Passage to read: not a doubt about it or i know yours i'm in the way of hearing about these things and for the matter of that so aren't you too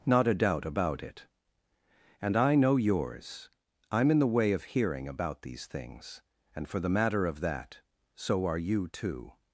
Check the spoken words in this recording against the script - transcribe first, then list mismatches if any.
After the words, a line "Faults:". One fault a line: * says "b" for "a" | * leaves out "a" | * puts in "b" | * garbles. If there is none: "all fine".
not a doubt about it and i know yours i'm in the way of hearing about these things and for the matter of that so are you too
Faults:
* says "and" for "or"
* says "are" for "aren't"